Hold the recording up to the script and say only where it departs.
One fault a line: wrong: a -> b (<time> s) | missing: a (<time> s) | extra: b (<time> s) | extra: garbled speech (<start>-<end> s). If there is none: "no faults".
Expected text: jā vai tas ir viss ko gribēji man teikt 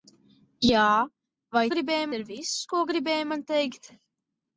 wrong: tas -> gribēji (1.7 s)